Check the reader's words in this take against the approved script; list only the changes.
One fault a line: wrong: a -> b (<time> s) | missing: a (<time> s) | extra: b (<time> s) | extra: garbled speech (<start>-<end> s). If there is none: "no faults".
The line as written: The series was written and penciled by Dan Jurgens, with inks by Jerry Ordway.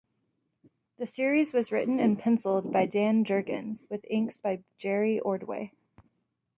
no faults